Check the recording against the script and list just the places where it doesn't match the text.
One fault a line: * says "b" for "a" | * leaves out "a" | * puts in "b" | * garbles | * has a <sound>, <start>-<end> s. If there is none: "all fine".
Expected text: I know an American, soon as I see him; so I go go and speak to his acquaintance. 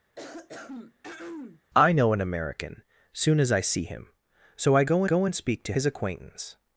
* has a throat clearing, 0.2-1.6 s